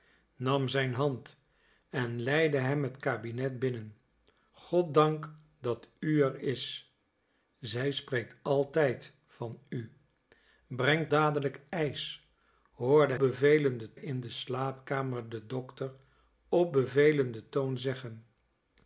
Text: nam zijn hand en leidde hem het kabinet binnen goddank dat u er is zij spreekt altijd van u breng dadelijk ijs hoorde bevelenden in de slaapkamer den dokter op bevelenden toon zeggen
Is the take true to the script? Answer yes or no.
yes